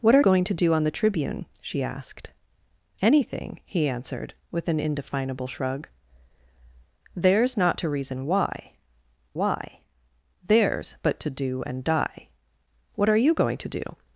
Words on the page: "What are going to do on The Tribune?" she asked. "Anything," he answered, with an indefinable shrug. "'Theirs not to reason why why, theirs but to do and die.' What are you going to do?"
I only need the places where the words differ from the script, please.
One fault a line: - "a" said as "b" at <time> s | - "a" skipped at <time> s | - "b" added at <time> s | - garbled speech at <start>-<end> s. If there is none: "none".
none